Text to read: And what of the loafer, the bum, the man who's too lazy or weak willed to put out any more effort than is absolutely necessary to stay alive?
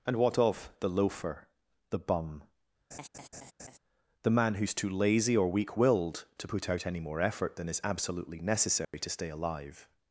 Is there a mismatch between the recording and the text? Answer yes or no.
no